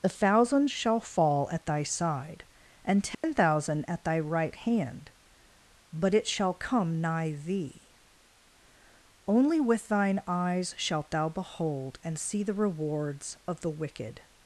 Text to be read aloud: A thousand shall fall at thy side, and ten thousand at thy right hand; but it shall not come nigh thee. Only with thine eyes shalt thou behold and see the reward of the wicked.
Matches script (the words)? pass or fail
fail